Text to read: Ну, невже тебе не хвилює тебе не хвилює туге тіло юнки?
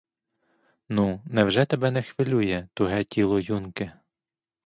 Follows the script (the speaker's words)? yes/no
no